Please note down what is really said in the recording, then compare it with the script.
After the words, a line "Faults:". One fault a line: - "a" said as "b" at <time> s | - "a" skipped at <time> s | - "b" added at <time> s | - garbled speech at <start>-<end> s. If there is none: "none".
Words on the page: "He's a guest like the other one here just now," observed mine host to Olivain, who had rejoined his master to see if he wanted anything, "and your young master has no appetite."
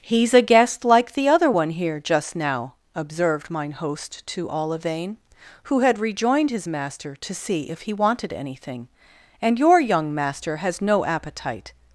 "He's a guest like the other one here just now," observed mine host to Olivain, who had rejoined his master to see if he wanted anything, "and your young master has no appetite."
Faults:
none